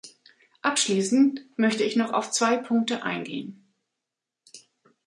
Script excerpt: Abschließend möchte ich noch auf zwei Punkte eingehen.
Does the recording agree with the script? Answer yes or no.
yes